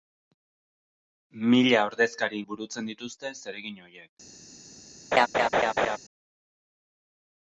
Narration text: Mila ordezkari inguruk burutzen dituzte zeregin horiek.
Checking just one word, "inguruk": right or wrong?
wrong